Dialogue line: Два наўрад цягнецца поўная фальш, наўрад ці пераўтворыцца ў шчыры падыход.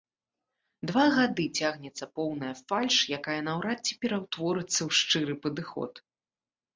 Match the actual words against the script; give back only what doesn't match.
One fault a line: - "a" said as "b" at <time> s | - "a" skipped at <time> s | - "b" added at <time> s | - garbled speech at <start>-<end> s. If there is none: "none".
- "наўрад" said as "гады" at 1.2 s
- "якая" added at 3.2 s